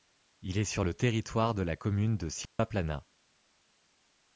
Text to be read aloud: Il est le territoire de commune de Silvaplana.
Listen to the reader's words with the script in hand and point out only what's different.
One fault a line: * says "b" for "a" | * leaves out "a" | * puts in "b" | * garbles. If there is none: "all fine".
* puts in "sur"
* puts in "la"